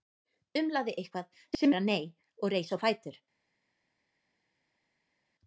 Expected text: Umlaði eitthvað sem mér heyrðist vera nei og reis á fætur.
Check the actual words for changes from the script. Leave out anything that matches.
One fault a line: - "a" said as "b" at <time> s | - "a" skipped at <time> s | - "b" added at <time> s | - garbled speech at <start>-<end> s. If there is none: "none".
- "mér heyrðist" skipped at 1.7 s